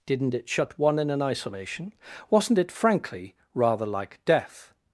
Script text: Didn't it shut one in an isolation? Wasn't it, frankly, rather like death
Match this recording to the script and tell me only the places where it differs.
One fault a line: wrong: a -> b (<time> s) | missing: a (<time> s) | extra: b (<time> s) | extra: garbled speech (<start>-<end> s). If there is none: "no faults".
no faults